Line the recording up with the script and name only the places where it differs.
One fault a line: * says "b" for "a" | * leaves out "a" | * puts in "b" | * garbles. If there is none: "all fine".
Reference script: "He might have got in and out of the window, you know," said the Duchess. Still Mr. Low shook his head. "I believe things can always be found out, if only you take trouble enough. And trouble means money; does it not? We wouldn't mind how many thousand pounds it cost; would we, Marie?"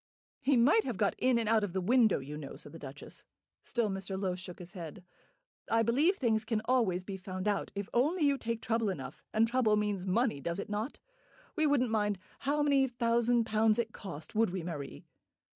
all fine